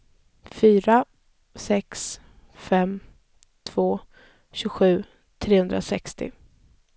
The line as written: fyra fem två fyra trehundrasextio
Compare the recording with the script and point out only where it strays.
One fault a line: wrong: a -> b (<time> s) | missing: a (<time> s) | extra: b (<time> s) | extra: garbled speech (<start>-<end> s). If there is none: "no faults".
extra: sex (1.6 s)
wrong: fyra -> tjugosju (4.5 s)